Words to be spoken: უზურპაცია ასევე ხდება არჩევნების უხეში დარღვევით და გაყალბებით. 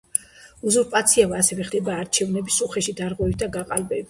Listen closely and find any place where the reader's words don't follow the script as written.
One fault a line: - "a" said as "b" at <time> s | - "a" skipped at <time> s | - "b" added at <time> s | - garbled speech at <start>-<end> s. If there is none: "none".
none